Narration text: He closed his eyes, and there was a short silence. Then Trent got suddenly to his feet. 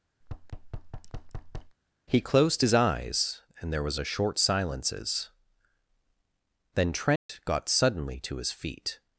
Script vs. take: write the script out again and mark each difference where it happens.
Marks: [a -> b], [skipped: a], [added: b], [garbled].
He closed his eyes, and there was a short [silence. -> silences] Then Trent got suddenly to his feet.